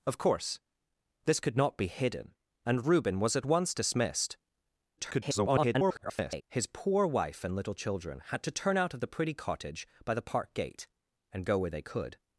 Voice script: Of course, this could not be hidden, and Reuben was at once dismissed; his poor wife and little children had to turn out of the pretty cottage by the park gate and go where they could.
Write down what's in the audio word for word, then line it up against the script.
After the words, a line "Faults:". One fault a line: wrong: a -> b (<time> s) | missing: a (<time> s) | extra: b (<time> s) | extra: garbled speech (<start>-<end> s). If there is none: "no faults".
Of course, this could not be hidden, and Reuben was at once dismissed; [garbled] his poor wife and little children had to turn out of the pretty cottage by the park gate and go where they could.
Faults:
extra: garbled speech (5.0-6.4 s)